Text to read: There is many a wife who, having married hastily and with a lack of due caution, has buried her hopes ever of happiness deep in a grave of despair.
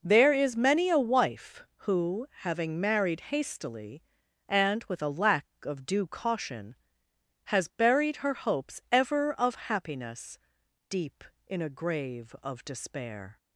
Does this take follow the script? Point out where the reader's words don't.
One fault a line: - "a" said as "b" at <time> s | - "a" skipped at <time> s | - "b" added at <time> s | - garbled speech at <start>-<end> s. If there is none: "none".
none